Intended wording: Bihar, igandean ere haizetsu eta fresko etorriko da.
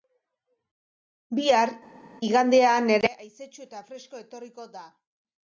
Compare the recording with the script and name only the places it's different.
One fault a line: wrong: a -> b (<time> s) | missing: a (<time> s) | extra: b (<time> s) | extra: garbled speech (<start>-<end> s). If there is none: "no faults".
no faults